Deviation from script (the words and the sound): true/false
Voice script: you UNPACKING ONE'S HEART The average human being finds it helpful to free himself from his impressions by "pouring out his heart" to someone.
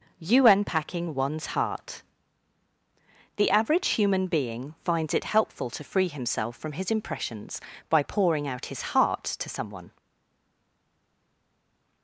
false